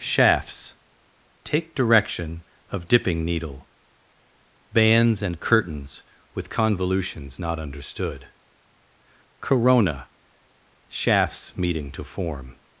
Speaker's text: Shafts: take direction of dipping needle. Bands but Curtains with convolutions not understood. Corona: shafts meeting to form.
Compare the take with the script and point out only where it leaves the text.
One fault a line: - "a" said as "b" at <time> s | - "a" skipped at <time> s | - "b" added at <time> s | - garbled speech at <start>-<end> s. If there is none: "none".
- "but" said as "and" at 5.2 s